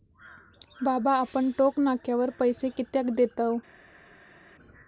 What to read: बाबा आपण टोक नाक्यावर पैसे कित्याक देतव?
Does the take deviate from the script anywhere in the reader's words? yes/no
no